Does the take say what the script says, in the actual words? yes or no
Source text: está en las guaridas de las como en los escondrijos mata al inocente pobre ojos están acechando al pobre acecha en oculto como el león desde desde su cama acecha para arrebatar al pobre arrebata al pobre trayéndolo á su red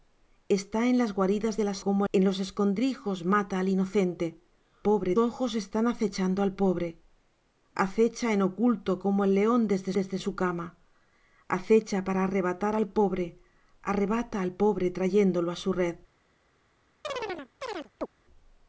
yes